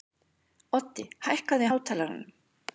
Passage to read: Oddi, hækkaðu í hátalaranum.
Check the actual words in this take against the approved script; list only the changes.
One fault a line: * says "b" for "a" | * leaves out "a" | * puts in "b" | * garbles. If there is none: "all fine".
all fine